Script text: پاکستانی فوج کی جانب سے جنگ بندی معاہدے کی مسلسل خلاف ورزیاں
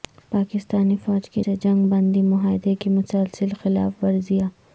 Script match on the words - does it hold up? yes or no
no